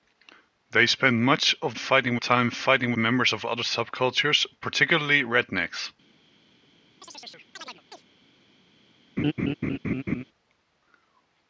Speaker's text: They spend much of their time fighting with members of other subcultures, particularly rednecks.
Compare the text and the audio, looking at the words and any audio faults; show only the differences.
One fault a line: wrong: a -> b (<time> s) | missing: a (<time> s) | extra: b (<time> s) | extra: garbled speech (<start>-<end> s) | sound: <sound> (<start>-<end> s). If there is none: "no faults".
wrong: their -> fighting (1.7 s)
missing: with (2.9 s)
sound: chirp (7.0-8.0 s)
sound: laugh (9.2-10.2 s)